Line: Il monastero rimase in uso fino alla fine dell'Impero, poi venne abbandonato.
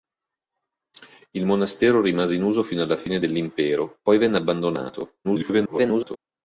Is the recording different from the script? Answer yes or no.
yes